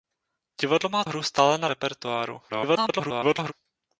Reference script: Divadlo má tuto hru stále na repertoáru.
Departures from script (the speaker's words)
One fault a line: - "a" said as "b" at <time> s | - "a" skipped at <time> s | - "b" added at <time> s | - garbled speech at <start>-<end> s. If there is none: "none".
- "tuto" skipped at 1.1 s
- garbled speech at 2.5-3.5 s